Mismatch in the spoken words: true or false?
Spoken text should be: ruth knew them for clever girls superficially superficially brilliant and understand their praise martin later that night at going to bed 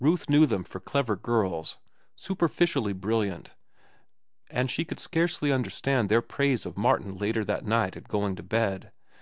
true